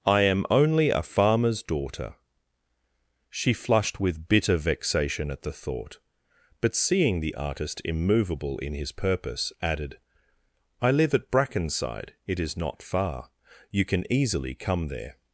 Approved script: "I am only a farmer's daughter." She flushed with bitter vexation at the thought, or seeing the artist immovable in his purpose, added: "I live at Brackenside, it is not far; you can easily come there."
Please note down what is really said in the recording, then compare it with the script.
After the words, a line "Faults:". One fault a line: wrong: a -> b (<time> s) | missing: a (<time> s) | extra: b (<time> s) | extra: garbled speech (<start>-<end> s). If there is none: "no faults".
"I am only a farmer's daughter." She flushed with bitter vexation at the thought, but seeing the artist immovable in his purpose, added: "I live at Brackenside, it is not far; you can easily come there."
Faults:
wrong: or -> but (6.6 s)